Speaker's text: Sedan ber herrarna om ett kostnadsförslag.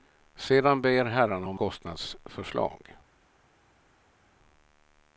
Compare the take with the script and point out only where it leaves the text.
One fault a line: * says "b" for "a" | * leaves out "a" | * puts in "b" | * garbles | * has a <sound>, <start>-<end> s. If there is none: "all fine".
* leaves out "ett"